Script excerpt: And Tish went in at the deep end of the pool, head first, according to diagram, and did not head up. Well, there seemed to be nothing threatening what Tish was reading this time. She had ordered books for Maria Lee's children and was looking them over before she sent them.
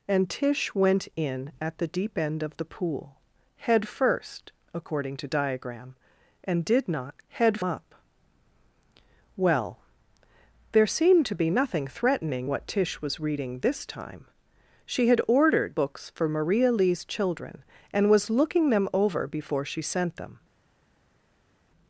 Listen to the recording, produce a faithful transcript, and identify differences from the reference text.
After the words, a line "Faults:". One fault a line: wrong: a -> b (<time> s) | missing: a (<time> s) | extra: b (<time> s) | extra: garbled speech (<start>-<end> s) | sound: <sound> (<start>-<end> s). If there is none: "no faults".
And Tish went in at the deep end of the pool, head first, according to diagram, and did not head up. Well, there seemed to be nothing threatening what Tish was reading this time. She had ordered books for Maria Lee's children and was looking them over before she sent them.
Faults:
no faults